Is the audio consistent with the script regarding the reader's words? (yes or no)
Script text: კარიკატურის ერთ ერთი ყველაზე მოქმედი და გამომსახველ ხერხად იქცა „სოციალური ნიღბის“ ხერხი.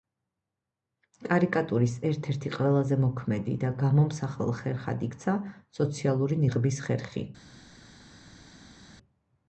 yes